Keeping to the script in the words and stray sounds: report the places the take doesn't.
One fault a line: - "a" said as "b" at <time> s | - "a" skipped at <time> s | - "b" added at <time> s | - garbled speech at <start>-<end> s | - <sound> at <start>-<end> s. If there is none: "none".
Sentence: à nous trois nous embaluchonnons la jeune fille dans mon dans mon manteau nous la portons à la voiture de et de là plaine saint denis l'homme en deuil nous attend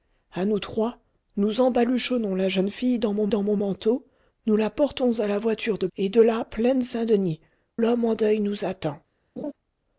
- laugh at 9.4-9.5 s